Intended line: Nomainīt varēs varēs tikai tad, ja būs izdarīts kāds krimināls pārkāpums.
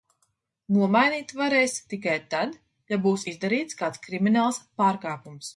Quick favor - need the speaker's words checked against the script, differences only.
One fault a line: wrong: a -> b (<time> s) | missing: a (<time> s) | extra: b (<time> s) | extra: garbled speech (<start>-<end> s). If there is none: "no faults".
missing: varēs (1.8 s)